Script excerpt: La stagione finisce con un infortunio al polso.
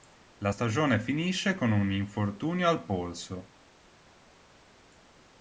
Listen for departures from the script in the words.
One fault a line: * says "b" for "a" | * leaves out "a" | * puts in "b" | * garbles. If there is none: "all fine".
all fine